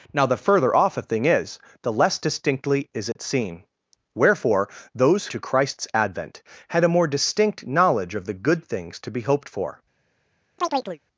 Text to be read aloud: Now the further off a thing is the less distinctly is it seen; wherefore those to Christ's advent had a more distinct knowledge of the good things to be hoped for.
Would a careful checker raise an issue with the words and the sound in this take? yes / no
yes